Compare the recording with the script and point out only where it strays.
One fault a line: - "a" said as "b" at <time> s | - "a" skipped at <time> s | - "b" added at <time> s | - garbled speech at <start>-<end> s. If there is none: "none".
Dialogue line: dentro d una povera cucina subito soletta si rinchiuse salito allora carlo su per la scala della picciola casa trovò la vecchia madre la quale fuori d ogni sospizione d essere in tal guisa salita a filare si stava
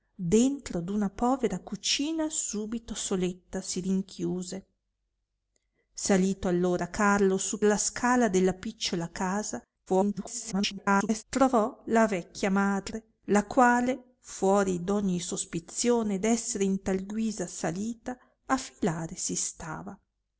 - "per" skipped at 7.6 s
- garbled speech at 9.9-11.2 s